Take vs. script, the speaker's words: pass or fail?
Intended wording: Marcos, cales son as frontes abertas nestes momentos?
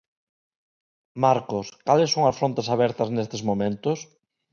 pass